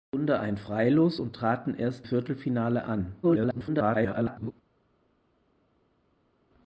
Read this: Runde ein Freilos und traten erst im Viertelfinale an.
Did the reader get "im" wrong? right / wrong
wrong